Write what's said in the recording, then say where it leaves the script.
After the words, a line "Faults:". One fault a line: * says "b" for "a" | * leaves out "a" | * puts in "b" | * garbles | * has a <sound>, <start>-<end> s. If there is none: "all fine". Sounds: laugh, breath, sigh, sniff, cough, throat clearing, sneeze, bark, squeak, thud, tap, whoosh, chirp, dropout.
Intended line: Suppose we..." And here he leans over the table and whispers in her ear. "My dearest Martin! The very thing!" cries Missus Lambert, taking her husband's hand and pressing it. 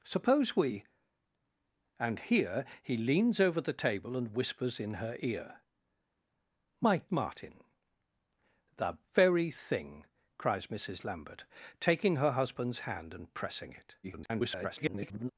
Suppose we..." And here he leans over the table and whispers in her ear. "My Martin! The very thing!" cries Missus Lambert, taking her husband's hand and pressing it. [garbled]
Faults:
* leaves out "dearest"
* garbles